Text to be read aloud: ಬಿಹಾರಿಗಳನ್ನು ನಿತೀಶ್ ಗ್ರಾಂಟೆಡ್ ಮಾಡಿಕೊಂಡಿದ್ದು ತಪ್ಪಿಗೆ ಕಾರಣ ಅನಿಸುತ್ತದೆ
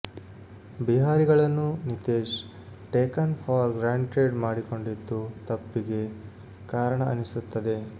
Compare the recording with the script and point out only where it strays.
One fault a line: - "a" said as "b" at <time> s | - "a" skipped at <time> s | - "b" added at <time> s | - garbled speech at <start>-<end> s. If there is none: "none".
- "ಟೇಕನ್ ಫಾರ್" added at 2.9 s